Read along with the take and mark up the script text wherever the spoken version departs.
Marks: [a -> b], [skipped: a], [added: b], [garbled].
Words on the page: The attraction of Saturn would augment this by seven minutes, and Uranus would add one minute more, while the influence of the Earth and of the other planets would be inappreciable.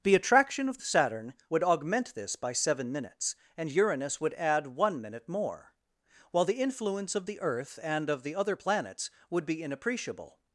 The attraction of Saturn would augment this by seven minutes, and Uranus would add one minute more, while the influence of the Earth and of the other planets would be inappreciable.